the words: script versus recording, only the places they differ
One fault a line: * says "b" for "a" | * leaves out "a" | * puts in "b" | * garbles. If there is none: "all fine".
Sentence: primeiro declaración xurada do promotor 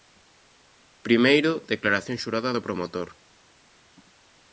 all fine